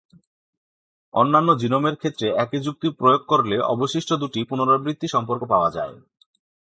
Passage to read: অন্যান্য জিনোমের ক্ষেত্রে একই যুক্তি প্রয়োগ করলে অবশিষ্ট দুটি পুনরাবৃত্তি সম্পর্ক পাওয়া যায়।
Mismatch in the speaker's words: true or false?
false